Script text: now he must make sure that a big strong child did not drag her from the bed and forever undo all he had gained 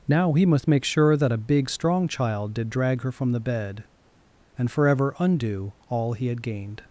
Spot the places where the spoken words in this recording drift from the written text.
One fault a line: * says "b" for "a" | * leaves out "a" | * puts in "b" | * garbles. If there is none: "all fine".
* leaves out "not"